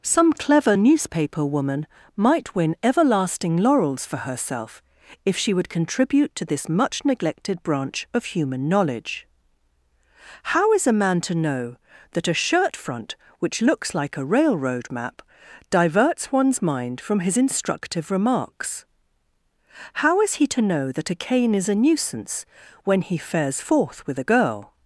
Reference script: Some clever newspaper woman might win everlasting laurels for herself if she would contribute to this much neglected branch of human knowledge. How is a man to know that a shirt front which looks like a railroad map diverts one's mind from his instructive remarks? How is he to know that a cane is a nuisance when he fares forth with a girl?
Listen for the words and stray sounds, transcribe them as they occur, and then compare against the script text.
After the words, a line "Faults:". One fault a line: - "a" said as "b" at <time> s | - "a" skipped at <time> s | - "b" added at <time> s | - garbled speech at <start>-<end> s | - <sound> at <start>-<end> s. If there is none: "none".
Some clever newspaper woman might win everlasting laurels for herself if she would contribute to this much neglected branch of human knowledge. How is a man to know that a shirt front which looks like a railroad map diverts one's mind from his instructive remarks? How is he to know that a cane is a nuisance when he fares forth with a girl?
Faults:
none